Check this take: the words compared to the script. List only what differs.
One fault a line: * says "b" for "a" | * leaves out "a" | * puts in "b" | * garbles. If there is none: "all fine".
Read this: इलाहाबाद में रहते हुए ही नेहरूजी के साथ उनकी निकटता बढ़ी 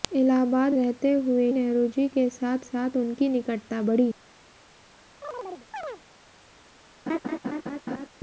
* leaves out "में"
* leaves out "ही"
* puts in "साथ"